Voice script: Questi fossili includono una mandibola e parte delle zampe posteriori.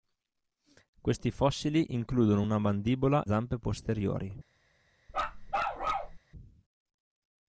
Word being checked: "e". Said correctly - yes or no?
no